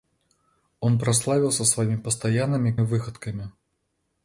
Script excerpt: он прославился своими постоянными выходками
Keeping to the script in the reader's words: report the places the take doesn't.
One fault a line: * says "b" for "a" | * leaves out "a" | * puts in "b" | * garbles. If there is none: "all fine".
all fine